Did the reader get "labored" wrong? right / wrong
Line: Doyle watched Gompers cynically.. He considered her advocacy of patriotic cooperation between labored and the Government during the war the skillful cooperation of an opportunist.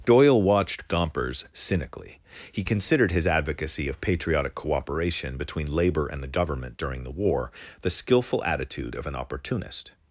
wrong